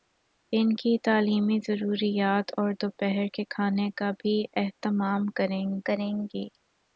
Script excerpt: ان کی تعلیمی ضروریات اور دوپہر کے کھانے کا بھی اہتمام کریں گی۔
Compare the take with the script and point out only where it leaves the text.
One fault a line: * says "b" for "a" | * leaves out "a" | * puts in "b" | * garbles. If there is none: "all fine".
* puts in "کریں"